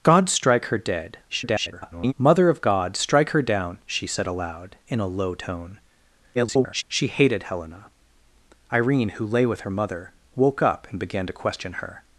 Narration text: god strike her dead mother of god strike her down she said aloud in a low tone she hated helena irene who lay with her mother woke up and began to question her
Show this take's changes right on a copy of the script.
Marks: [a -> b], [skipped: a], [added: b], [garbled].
god strike her dead [garbled] mother of god strike her down she said aloud in a low tone [garbled] she hated helena irene who lay with her mother woke up and began to question her